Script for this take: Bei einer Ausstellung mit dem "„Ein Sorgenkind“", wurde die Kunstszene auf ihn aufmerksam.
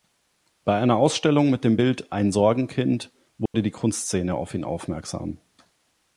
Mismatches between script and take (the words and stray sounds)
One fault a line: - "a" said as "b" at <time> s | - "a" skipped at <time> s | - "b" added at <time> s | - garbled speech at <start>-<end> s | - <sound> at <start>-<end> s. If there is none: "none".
- "Bild" added at 1.7 s
- dropout at 3.5-3.5 s